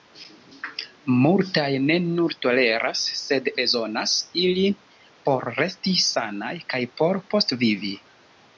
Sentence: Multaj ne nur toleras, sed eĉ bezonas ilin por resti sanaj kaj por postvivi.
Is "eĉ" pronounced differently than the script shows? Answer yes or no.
yes